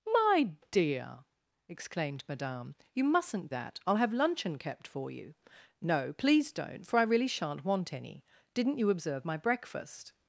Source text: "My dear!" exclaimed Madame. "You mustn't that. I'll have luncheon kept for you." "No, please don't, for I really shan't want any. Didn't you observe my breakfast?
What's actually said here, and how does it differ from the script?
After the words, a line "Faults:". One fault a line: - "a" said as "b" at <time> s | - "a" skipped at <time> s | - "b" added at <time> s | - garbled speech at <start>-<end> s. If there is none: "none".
"My dear!" exclaimed Madame. "You mustn't that. I'll have luncheon kept for you." "No, please don't, for I really shan't want any. Didn't you observe my breakfast?
Faults:
none